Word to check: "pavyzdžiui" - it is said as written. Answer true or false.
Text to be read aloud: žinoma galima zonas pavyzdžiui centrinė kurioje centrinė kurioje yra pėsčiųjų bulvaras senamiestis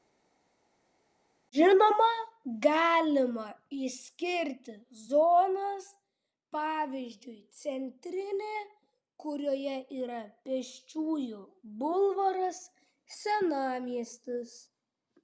true